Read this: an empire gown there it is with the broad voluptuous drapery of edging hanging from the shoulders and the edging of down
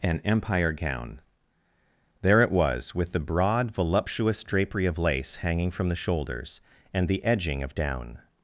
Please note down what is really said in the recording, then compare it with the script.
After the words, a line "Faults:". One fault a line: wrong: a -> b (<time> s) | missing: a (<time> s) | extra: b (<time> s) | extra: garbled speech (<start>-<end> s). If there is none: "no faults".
an empire gown there it was with the broad voluptuous drapery of lace hanging from the shoulders and the edging of down
Faults:
wrong: is -> was (2.5 s)
wrong: edging -> lace (5.0 s)